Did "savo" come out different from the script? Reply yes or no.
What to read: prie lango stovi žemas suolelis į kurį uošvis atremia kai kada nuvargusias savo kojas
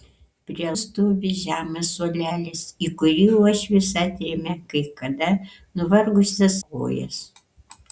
yes